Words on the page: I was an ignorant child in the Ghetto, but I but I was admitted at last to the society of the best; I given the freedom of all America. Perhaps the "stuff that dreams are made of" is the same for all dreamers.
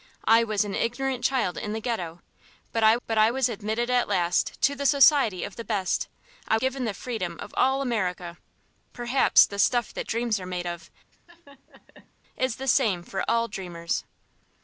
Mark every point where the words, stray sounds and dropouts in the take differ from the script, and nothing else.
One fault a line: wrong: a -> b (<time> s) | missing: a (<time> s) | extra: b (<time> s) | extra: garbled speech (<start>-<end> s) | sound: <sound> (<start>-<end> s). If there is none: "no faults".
sound: laugh (11.1-12.1 s)